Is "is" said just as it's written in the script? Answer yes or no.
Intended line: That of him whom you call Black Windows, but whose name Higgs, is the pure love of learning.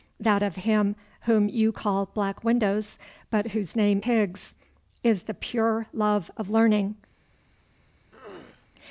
yes